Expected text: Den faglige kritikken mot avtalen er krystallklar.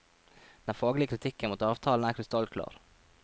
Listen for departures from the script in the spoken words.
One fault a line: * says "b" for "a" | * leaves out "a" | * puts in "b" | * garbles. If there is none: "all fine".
all fine